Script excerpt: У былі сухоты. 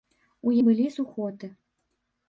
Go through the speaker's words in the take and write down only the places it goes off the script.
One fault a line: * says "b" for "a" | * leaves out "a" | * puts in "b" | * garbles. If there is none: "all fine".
all fine